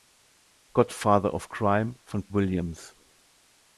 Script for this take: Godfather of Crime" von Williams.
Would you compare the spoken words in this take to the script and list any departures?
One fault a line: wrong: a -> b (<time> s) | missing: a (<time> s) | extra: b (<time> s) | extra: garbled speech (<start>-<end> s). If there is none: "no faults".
no faults